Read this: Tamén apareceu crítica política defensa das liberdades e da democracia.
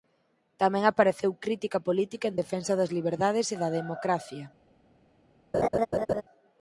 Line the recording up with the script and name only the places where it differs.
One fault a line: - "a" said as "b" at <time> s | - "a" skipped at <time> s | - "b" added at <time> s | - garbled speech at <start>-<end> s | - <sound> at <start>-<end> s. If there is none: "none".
- "en" added at 2.3 s
- laugh at 5.5-6.2 s